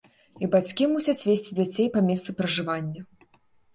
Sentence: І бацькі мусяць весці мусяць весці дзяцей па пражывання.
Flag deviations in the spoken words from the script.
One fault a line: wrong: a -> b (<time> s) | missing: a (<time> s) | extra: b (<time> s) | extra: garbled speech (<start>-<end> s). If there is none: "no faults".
missing: мусяць весці (1.6 s)
extra: месцы (2.1 s)